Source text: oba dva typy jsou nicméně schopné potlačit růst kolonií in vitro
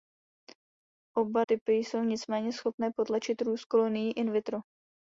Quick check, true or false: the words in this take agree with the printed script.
false